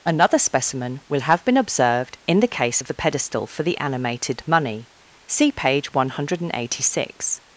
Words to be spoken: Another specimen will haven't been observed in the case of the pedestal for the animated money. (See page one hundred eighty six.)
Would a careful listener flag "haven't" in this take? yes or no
yes